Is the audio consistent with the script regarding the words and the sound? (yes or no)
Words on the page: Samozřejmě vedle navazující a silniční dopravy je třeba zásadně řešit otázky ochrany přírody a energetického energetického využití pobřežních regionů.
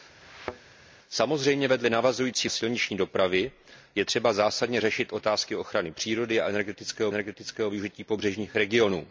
no